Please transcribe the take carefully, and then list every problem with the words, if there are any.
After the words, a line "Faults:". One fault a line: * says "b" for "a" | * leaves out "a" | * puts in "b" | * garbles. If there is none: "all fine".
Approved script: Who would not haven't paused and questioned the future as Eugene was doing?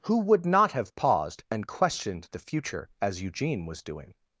Who would not have paused and questioned the future as Eugene was doing?
Faults:
* says "have" for "haven't"